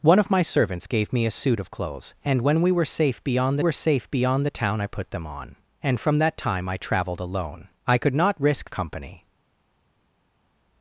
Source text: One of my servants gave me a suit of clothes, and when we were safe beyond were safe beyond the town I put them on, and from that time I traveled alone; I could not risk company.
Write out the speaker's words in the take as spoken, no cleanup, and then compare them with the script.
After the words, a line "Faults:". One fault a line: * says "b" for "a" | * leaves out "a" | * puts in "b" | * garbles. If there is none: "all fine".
One of my servants gave me a suit of clothes, and when we were safe beyond were safe beyond the town I put them on, and from that time I traveled alone; I could not risk company.
Faults:
all fine